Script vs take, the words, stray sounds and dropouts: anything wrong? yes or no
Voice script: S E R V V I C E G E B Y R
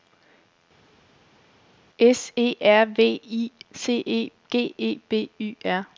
yes